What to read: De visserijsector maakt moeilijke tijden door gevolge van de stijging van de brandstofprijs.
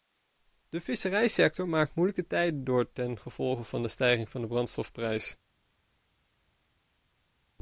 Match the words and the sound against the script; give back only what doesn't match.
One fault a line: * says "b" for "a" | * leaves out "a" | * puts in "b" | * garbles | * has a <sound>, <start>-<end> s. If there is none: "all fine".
* puts in "ten"